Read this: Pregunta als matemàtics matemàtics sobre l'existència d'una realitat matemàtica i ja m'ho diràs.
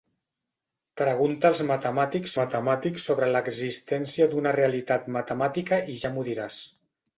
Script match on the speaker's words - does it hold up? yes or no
yes